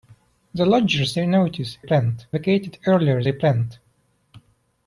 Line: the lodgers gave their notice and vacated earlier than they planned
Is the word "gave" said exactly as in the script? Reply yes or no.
no